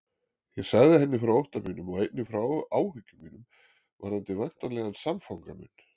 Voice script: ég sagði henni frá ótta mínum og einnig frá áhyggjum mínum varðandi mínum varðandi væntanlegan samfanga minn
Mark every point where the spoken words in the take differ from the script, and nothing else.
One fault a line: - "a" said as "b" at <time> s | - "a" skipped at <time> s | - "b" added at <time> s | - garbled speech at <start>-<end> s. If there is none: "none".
- "mínum varðandi" skipped at 4.4 s